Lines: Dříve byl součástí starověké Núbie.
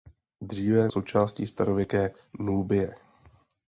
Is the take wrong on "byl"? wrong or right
wrong